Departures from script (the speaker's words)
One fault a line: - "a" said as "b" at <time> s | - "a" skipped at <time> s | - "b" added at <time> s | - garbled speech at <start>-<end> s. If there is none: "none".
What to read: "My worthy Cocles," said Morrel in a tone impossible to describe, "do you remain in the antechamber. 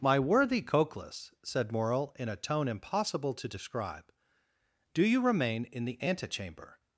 none